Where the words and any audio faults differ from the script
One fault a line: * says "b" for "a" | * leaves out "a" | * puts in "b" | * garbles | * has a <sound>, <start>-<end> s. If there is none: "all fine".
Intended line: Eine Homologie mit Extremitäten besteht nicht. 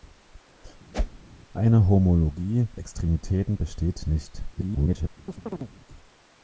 * has a whoosh, 0.9-1.2 s
* leaves out "mit"
* garbles
* has a chirp, 5.3-5.7 s